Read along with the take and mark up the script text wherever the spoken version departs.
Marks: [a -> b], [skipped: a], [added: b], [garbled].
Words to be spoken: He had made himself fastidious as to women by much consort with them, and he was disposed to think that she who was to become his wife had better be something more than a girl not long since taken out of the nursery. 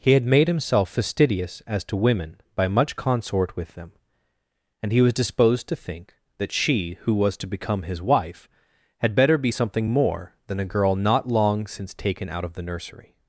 He had made himself fastidious as to women by much consort with them, and he was disposed to think that she who was to become his wife had better be something more than a girl not long since taken out of the nursery.